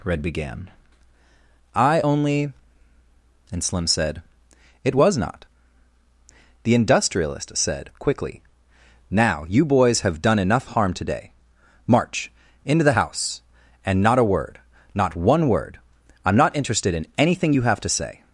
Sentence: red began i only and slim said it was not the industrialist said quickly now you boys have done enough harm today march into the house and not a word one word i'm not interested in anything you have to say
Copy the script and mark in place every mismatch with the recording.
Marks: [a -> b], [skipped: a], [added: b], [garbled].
red began i only and slim said it was not the industrialist said quickly now you boys have done enough harm today march into the house and not a word [added: not] one word i'm not interested in anything you have to say